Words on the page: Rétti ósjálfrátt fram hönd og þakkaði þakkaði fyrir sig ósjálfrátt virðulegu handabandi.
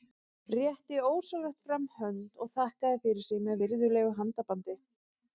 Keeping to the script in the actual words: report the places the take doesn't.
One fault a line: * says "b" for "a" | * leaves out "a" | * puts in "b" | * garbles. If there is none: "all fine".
* leaves out "þakkaði"
* says "með" for "ósjálfrátt"